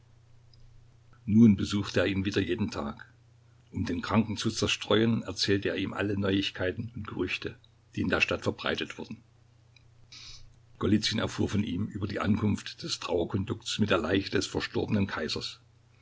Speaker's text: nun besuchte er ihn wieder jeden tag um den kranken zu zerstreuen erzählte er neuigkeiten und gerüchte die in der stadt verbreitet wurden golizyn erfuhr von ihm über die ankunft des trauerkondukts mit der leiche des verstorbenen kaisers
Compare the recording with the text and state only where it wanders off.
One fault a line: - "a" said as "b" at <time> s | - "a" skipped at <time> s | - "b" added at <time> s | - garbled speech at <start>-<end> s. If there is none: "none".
- "ihm alle" added at 5.8 s